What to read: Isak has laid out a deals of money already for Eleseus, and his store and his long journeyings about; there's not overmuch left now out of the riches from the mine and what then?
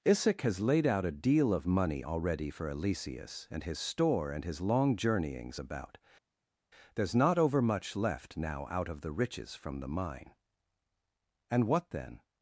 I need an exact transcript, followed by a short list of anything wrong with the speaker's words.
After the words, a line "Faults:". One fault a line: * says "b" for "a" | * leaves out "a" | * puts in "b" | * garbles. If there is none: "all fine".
Isak has laid out a deal of money already for Eleseus, and his store and his long journeyings about; there's not overmuch left now out of the riches from the mine and what then?
Faults:
* says "deal" for "deals"